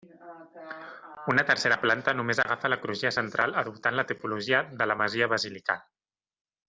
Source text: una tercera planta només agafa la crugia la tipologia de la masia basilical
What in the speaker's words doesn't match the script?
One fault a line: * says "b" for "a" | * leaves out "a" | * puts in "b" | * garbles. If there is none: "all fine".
* puts in "central adoptant"